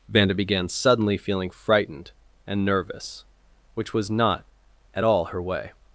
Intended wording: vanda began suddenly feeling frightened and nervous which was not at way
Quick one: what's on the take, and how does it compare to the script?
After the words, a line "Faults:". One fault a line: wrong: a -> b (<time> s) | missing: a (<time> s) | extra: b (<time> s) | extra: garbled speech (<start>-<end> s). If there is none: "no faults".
vanda began suddenly feeling frightened and nervous which was not at all her way
Faults:
extra: all her (5.0 s)